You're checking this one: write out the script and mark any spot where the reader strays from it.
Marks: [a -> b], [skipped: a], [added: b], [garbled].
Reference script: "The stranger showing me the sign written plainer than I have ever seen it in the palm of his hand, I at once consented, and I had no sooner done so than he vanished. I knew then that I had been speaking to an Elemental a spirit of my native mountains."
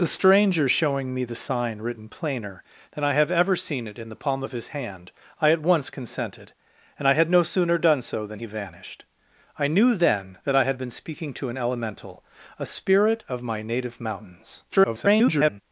"The stranger showing me the sign written plainer than I have ever seen it in the palm of his hand, I at once consented, and I had no sooner done so than he vanished. I knew then that I had been speaking to an Elemental a spirit of my native mountains." [garbled]